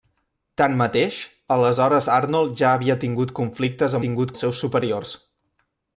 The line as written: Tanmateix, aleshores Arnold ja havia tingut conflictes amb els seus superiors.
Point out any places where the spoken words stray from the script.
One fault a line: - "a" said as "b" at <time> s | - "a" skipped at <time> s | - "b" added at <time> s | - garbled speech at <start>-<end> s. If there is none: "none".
- "amb" said as "tingut" at 4.0 s